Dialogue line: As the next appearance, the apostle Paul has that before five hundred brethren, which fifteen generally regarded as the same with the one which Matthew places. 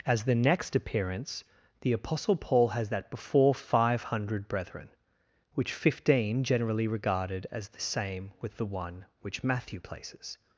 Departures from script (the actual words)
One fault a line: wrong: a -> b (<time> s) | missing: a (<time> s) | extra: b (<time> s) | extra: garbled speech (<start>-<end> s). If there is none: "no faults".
no faults